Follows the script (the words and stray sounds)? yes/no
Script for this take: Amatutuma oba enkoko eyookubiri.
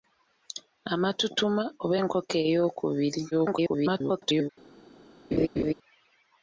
no